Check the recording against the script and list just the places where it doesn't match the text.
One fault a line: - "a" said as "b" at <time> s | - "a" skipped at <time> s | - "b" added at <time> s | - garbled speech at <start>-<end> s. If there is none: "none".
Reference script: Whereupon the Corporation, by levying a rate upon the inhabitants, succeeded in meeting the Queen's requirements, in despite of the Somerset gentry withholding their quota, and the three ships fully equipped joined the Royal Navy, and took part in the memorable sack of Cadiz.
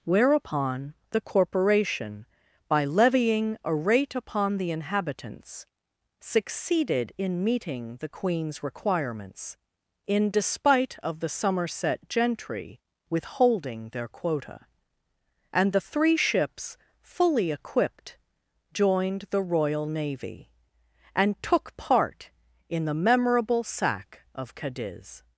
none